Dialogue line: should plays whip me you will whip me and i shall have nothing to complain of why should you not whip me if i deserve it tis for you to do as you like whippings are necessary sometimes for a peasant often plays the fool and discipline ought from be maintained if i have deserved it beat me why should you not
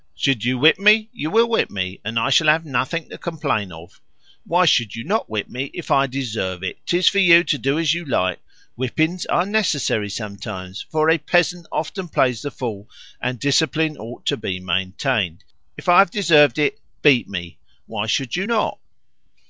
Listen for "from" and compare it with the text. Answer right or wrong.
wrong